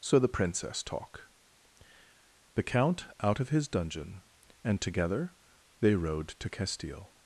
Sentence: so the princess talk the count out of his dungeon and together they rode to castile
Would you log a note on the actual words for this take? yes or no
no